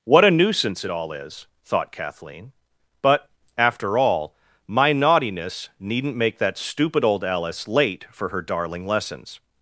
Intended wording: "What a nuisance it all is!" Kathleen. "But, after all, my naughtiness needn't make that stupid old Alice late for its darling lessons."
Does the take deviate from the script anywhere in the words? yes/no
yes